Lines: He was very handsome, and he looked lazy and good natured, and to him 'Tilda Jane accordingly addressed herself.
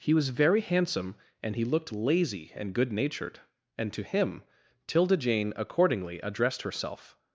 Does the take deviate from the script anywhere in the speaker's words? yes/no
no